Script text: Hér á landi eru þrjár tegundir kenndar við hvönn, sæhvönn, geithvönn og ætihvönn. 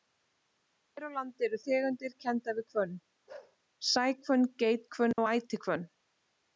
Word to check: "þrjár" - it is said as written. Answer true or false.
false